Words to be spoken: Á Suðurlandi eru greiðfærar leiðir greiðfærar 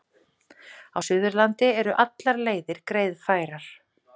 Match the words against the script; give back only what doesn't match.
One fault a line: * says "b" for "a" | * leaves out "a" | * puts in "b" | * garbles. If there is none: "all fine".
* says "allar" for "greiðfærar"